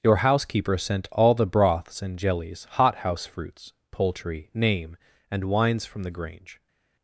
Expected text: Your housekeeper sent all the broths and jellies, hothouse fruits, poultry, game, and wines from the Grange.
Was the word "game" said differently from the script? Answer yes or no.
yes